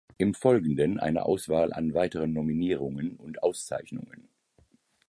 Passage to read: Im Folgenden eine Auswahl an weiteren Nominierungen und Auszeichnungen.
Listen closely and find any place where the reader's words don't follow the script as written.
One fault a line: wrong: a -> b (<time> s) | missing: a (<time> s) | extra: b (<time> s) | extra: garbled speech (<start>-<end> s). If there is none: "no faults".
no faults